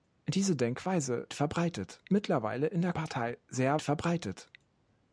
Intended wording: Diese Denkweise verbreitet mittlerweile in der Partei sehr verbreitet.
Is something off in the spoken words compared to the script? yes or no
no